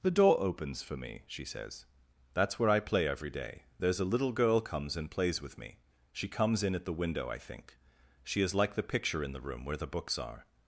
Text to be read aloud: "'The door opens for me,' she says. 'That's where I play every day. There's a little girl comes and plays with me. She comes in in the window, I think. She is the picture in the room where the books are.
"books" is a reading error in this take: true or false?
false